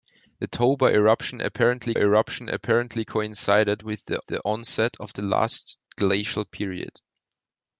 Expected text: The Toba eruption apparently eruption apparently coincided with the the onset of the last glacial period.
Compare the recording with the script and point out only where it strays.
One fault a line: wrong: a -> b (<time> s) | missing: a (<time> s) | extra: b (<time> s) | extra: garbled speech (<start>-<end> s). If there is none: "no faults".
no faults